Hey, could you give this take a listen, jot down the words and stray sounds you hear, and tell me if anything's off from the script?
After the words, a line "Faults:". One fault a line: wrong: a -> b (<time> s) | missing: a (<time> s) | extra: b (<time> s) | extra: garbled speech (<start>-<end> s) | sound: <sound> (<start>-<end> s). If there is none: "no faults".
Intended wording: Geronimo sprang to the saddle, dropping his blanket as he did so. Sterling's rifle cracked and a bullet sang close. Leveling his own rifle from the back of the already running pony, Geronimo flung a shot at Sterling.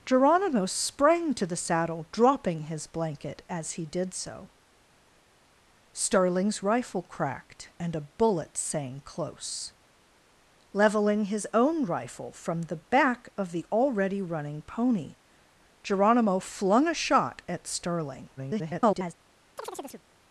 Geronimo sprang to the saddle, dropping his blanket as he did so. Sterling's rifle cracked and a bullet sang close. Leveling his own rifle from the back of the already running pony, Geronimo flung a shot at Sterling. [garbled]
Faults:
extra: garbled speech (18.4-19.1 s)
sound: chirp (19.6-20.1 s)